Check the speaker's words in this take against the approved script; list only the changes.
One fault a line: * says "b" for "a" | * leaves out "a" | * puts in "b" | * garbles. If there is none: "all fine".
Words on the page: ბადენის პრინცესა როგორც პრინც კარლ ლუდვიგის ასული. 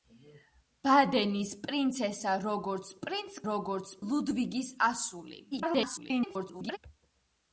* says "როგორც" for "კარლ"
* garbles